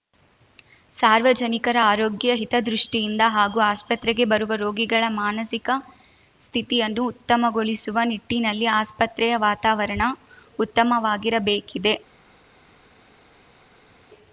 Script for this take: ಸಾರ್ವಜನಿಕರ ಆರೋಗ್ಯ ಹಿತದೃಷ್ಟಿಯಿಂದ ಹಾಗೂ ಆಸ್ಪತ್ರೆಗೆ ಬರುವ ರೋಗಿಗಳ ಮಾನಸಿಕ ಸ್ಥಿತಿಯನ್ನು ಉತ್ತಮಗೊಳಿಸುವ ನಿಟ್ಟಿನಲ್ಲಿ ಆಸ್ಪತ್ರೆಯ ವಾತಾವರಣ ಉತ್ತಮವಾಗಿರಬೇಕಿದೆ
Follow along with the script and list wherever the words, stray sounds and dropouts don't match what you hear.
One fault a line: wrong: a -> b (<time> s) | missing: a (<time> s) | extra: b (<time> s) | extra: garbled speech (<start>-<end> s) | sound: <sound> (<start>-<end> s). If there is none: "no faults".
no faults